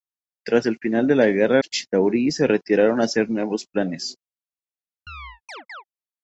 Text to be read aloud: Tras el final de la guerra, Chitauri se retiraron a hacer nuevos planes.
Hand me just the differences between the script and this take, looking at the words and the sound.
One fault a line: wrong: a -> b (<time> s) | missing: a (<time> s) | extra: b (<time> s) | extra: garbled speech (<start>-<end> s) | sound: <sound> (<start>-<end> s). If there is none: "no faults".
sound: chirp (5.1-5.8 s)